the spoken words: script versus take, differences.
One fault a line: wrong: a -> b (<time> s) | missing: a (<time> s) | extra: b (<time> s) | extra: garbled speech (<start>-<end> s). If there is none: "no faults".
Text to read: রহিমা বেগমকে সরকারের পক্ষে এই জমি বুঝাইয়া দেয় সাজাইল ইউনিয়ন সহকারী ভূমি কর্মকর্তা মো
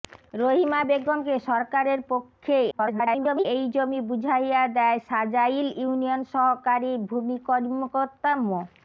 extra: garbled speech (2.7-3.4 s)